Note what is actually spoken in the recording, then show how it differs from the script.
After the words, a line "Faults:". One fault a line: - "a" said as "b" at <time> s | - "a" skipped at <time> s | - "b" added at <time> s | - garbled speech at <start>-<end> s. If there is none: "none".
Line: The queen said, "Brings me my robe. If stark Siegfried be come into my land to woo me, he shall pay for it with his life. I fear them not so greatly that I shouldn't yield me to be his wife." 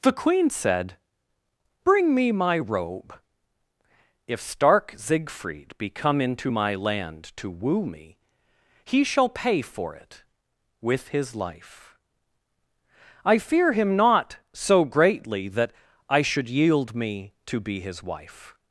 The queen said, "Bring me my robe. If stark Siegfried be come into my land to woo me, he shall pay for it with his life. I fear him not so greatly that I should yield me to be his wife."
Faults:
- "Brings" said as "Bring" at 1.8 s
- "them" said as "him" at 13.7 s
- "shouldn't" said as "should" at 16.2 s